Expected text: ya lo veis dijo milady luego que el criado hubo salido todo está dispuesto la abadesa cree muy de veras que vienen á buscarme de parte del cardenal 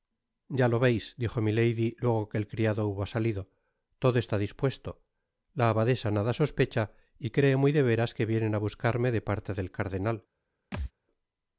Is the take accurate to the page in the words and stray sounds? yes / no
no